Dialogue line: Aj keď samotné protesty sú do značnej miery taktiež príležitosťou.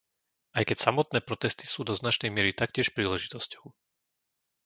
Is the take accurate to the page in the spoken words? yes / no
yes